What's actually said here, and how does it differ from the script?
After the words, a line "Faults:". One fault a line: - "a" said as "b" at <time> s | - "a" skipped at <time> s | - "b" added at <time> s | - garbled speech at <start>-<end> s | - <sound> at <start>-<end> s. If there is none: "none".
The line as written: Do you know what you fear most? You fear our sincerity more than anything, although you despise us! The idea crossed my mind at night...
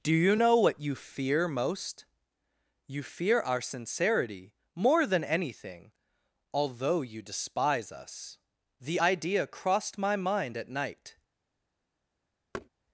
Do you know what you fear most? You fear our sincerity more than anything, although you despise us! The idea crossed my mind at night...
Faults:
- thud at 12.5-12.7 s